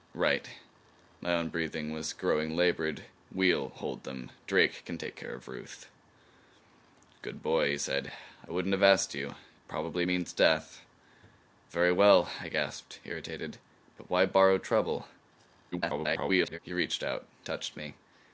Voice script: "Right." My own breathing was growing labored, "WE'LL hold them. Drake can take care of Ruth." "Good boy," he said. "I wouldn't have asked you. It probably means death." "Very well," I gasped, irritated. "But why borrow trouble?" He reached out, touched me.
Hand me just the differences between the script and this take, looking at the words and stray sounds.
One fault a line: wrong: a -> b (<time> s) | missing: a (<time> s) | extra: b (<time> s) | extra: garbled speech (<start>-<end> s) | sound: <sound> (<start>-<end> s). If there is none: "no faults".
extra: garbled speech (15.7-16.6 s)